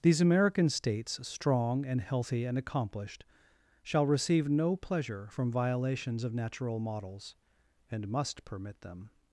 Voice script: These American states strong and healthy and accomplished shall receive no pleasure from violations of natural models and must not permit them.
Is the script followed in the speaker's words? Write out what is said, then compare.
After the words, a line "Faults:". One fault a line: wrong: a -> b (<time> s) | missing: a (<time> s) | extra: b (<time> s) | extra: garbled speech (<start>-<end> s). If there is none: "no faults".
These American states strong and healthy and accomplished shall receive no pleasure from violations of natural models and must permit them.
Faults:
missing: not (8.4 s)